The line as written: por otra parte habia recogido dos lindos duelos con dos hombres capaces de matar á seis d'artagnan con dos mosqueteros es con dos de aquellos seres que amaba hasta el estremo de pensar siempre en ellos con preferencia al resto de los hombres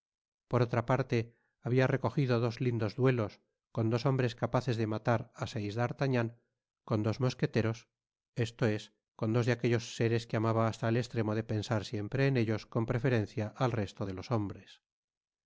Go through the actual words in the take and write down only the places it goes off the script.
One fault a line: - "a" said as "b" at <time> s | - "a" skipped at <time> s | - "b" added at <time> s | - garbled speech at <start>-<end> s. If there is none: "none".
- "esto" added at 8.5 s